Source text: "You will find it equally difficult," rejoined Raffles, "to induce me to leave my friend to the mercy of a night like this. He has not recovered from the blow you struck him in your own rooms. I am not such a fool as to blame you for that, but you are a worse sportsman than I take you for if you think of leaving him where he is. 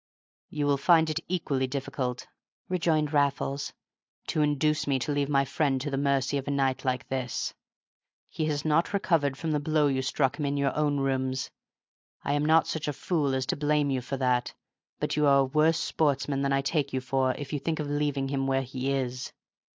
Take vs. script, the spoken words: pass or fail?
pass